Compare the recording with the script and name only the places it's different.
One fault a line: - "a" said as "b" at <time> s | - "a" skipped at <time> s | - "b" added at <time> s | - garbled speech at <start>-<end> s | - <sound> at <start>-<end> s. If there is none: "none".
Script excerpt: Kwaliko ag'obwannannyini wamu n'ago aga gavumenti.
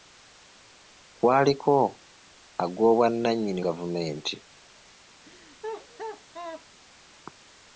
- "wamu n'ago aga" skipped at 3.6 s
- laugh at 5.2-6.7 s